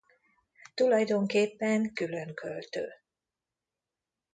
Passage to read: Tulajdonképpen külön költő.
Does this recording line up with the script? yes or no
yes